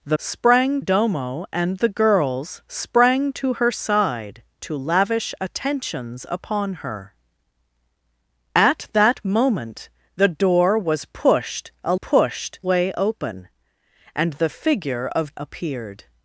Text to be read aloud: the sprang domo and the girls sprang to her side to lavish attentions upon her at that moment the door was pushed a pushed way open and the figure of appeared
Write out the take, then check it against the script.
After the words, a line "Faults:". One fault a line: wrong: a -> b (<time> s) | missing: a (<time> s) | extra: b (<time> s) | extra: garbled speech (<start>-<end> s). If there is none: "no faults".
the sprang domo and the girls sprang to her side to lavish attentions upon her at that moment the door was pushed a pushed way open and the figure of appeared
Faults:
no faults